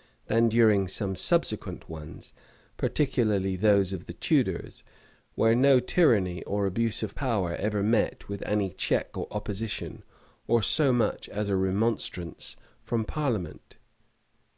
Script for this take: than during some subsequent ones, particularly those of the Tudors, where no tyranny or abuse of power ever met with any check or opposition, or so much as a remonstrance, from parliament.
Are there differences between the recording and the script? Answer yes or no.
no